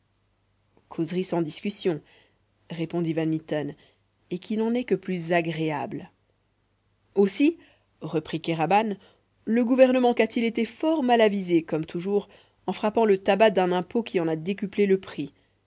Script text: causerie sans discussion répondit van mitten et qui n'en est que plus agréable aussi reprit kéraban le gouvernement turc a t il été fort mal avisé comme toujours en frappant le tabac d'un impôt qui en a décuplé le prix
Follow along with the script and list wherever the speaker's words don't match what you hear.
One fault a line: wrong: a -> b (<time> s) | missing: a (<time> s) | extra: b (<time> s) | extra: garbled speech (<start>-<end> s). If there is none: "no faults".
missing: turc (10.1 s)